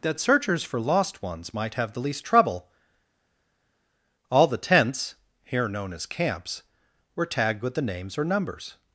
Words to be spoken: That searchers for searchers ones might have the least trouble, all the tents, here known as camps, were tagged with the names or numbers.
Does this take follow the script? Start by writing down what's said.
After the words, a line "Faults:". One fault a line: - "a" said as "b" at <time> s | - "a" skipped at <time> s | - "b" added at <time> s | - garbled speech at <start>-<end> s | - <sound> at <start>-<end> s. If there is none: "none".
That searchers for lost ones might have the least trouble, all the tents, here known as camps, were tagged with the names or numbers.
Faults:
- "searchers" said as "lost" at 0.8 s